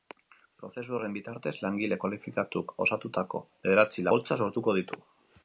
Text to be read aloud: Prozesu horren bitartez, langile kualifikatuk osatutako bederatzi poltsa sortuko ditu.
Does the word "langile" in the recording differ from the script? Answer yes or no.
no